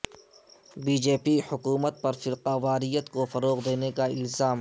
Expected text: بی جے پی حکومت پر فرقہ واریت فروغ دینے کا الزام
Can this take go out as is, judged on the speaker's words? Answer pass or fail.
fail